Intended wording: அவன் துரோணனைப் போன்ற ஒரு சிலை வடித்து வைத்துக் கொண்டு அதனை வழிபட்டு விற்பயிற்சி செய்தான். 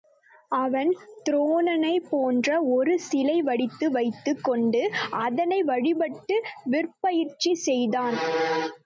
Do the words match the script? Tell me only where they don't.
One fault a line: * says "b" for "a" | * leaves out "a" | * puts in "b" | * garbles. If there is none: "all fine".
all fine